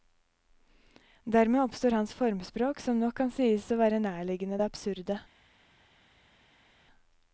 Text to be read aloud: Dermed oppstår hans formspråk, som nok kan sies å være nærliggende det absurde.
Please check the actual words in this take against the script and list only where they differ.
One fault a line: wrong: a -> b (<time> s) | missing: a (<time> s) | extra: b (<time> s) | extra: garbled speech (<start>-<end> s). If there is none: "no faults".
no faults